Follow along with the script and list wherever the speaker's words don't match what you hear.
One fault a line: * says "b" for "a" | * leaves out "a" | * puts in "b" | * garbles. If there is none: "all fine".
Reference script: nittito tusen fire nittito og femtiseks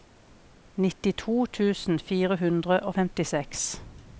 * says "hundre" for "nittito"